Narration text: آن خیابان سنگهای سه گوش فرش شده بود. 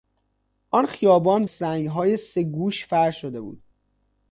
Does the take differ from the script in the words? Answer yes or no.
no